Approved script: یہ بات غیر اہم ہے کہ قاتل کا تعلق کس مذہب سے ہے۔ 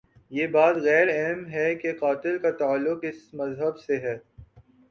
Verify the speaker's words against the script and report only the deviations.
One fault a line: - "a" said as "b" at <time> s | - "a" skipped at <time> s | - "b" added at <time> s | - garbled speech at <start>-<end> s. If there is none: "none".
none